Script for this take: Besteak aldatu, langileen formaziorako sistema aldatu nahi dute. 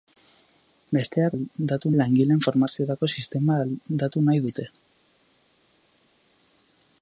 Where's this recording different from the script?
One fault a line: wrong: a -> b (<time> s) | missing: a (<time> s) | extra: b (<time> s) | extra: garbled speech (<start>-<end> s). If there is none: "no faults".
no faults